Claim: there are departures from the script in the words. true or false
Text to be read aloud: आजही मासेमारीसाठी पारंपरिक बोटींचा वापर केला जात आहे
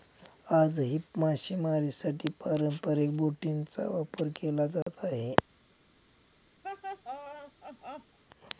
false